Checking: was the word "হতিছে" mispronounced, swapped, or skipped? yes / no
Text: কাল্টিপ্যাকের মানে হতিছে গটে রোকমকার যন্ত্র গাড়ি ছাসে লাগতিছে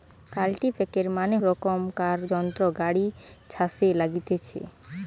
yes